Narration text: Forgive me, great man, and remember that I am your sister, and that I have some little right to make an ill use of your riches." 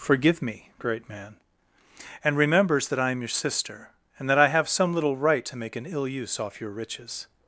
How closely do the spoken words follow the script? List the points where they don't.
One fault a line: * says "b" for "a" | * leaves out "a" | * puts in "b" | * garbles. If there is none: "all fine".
* says "remembers" for "remember"
* says "off" for "of"